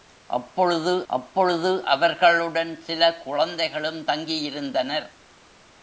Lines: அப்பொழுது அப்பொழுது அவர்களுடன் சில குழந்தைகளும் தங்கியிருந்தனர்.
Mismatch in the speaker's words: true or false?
false